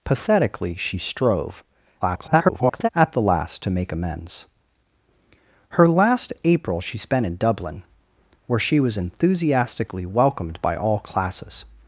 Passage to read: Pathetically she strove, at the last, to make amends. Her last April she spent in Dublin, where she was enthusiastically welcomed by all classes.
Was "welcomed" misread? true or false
false